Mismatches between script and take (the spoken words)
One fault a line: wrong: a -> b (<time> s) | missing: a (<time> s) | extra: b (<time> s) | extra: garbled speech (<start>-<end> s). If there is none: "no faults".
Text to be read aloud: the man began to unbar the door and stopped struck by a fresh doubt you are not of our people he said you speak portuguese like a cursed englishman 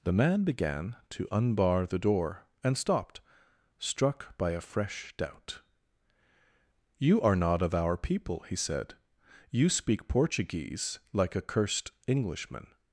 no faults